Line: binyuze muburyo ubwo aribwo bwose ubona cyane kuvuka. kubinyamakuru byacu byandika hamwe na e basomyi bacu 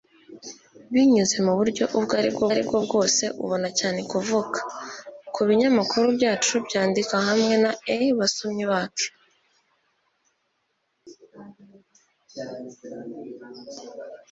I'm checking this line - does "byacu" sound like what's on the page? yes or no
yes